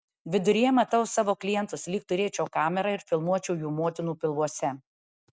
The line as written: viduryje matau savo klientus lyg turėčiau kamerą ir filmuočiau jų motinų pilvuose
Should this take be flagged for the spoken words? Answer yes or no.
no